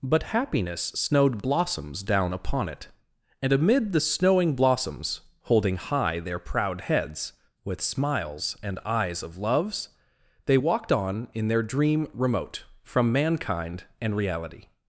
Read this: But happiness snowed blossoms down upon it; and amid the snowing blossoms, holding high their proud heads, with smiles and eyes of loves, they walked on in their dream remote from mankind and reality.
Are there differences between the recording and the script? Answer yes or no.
no